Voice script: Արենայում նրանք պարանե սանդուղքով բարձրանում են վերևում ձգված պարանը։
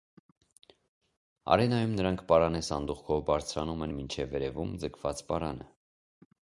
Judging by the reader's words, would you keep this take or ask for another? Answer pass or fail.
fail